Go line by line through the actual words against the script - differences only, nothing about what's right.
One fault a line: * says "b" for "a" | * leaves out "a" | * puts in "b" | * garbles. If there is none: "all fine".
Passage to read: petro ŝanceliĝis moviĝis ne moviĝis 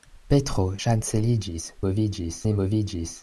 all fine